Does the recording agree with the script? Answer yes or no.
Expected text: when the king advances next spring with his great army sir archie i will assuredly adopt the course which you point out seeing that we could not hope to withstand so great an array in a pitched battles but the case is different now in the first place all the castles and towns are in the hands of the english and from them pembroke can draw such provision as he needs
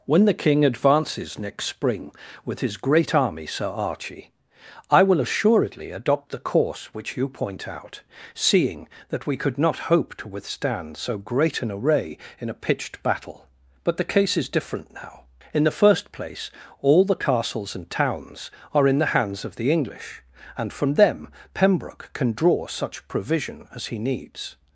no